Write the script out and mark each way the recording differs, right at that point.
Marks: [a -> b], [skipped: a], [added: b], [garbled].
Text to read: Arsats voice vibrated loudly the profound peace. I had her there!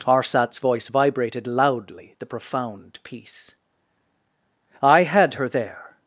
Arsats voice vibrated loudly the profound peace. I had her there!